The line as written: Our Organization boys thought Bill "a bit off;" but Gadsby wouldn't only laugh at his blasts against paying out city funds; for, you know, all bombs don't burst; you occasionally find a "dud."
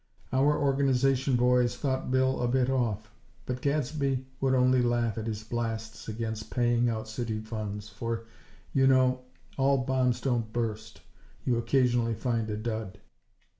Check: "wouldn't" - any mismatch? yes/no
yes